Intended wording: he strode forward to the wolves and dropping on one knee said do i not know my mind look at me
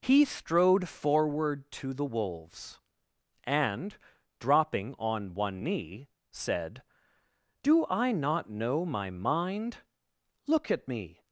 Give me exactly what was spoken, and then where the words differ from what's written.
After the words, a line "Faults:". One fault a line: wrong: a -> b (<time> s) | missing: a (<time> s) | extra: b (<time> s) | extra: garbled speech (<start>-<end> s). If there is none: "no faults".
he strode forward to the wolves and dropping on one knee said do i not know my mind look at me
Faults:
no faults